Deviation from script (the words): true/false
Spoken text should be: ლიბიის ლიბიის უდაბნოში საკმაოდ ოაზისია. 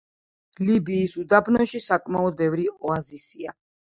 true